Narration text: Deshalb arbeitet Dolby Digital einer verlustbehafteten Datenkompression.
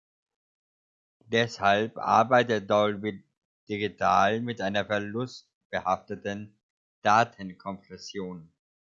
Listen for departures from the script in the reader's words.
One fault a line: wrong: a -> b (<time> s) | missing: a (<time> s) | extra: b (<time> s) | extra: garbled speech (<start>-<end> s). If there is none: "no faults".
extra: mit (4.4 s)